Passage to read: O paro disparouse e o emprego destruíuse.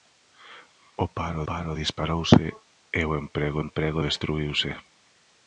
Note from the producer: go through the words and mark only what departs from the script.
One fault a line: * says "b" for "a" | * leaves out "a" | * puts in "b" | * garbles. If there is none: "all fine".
* puts in "paro"
* puts in "emprego"